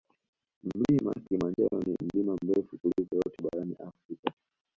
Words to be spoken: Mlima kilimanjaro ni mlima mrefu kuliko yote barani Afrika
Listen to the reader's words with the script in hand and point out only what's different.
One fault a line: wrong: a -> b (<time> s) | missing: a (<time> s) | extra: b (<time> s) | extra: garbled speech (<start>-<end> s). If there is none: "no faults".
no faults